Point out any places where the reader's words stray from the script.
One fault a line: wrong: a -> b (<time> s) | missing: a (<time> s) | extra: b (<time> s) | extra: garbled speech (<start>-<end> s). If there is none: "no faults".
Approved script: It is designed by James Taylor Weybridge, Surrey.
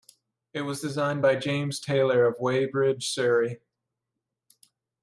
wrong: is -> was (0.6 s)
extra: of (2.2 s)